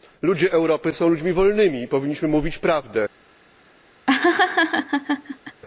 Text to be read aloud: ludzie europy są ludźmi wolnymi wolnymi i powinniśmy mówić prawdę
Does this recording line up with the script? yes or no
no